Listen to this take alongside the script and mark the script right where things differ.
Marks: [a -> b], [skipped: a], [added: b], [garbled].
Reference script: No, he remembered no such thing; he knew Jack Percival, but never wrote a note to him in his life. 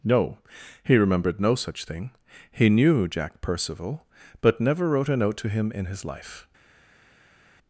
No, he remembered no such thing; he knew Jack Percival, but never wrote a note to him in his life.